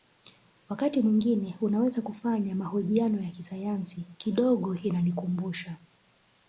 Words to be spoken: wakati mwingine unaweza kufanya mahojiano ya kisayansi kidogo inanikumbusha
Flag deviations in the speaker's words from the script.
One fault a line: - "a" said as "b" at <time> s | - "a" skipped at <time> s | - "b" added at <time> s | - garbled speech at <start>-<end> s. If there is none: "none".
none